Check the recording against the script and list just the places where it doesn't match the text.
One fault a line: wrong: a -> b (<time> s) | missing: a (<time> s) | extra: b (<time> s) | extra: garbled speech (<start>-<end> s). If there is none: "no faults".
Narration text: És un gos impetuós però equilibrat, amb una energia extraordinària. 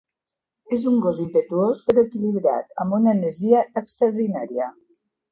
no faults